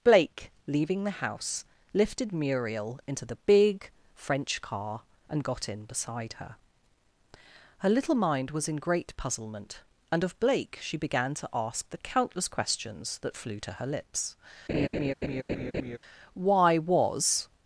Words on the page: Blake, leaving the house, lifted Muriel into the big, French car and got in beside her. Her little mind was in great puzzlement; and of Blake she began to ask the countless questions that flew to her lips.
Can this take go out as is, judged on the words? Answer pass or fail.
fail